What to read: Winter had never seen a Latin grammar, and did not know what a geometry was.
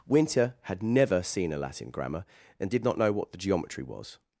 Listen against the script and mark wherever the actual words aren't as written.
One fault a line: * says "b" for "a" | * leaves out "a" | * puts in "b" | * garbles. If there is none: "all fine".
* says "the" for "a"